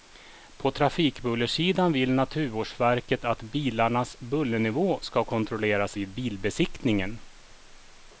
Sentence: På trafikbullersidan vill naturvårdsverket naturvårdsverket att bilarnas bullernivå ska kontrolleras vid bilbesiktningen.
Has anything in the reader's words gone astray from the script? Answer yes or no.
yes